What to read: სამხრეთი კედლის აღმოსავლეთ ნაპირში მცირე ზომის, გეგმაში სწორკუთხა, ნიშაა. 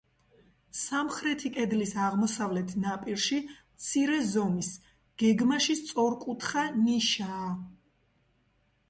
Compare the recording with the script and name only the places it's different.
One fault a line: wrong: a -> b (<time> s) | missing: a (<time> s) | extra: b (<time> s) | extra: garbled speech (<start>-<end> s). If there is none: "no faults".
no faults